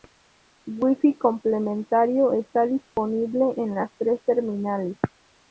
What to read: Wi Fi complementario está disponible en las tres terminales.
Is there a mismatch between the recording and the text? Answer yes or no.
no